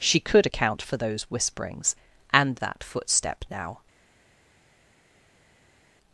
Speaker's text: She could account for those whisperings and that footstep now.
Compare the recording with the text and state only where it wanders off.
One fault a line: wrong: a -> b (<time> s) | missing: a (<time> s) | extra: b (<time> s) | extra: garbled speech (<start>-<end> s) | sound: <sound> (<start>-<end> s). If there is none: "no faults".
no faults